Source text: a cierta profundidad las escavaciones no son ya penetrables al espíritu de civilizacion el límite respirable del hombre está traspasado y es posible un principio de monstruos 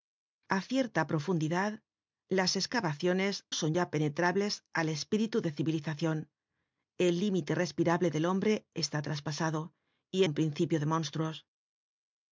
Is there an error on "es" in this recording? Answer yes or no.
yes